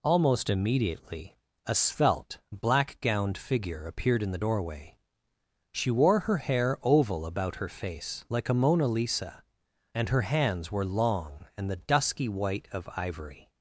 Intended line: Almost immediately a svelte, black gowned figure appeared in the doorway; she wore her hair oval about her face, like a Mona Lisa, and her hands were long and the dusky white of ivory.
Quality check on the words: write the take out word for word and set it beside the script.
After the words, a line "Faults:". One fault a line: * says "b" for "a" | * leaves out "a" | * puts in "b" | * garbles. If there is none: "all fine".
Almost immediately a svelte, black gowned figure appeared in the doorway; she wore her hair oval about her face, like a Mona Lisa, and her hands were long and the dusky white of ivory.
Faults:
all fine